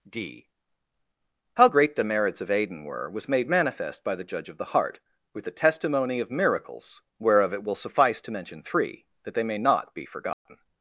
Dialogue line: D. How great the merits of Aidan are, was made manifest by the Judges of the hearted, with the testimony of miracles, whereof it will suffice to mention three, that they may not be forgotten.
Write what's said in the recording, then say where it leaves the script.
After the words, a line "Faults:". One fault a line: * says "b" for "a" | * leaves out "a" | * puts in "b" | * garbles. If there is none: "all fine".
D. How great the merits of Aidan were, was made manifest by the Judge of the heart, with the testimony of miracles, whereof it will suffice to mention three, that they may not be forgotten.
Faults:
* says "were" for "are"
* says "Judge" for "Judges"
* says "heart" for "hearted"